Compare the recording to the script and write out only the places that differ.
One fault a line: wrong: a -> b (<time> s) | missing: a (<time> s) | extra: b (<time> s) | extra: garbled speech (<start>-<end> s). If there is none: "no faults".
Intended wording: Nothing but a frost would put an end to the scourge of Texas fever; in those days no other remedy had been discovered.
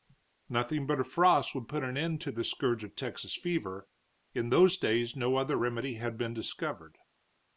no faults